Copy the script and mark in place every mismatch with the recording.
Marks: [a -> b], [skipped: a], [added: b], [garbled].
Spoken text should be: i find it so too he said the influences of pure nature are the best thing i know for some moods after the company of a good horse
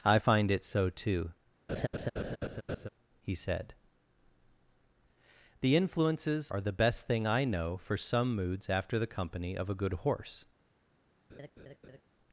i find it so too he said the influences [skipped: of pure nature] are the best thing i know for some moods after the company of a good horse